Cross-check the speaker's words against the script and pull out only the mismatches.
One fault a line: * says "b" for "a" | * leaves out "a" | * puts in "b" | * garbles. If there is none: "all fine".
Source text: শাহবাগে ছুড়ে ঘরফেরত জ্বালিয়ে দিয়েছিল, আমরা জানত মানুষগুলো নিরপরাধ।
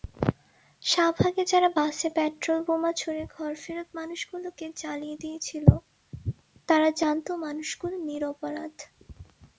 * puts in "যারা বাসে পেট্রলবোমা"
* puts in "মানুষগুলোকে"
* says "তারা" for "আমরা"